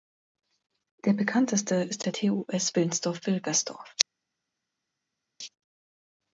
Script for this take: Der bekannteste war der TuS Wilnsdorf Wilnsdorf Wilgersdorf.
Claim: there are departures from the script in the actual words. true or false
true